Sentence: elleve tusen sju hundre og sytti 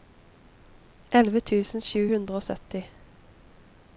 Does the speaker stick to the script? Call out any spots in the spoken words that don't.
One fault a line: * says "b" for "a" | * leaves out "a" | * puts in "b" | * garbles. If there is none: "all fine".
all fine